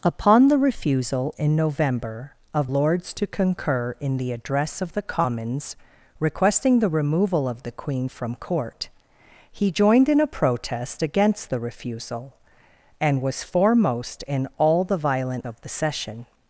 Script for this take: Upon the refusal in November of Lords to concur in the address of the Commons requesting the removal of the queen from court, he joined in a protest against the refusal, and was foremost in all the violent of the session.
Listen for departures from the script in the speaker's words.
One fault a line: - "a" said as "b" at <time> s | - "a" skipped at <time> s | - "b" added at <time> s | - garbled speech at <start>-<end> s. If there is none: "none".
none